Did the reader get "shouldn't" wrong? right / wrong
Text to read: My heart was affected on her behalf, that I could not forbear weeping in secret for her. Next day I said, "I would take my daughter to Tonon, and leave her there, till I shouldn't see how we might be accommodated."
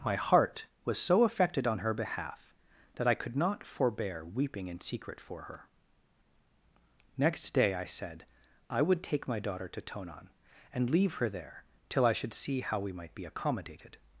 wrong